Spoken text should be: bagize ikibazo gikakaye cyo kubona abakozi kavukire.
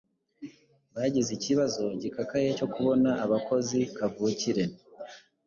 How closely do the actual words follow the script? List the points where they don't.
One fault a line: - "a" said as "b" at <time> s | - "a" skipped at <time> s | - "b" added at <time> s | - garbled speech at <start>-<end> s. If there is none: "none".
none